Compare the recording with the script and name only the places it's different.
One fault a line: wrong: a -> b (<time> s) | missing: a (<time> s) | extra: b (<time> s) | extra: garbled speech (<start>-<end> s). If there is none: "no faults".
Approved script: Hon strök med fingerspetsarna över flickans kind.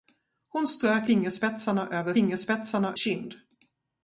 missing: med (1.1 s)
wrong: flickans -> fingerspetsarna (2.1 s)